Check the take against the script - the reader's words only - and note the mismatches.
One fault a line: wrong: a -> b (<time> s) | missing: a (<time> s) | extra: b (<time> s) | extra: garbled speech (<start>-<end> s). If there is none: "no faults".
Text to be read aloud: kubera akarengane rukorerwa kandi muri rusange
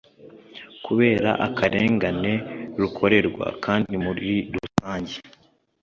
no faults